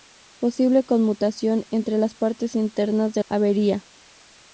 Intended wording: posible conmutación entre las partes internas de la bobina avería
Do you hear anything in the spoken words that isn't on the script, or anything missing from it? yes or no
yes